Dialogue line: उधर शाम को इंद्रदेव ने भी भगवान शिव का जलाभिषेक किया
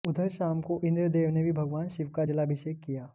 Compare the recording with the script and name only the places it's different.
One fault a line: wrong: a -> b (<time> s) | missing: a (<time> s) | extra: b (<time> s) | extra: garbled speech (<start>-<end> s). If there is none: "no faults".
no faults